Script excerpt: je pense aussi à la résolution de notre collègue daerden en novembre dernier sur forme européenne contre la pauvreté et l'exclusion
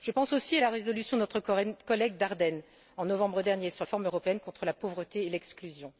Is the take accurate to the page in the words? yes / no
yes